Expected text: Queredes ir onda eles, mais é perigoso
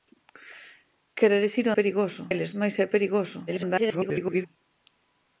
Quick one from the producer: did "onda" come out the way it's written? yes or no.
no